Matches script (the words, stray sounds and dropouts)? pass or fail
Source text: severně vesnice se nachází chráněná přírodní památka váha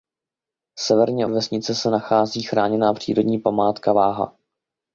pass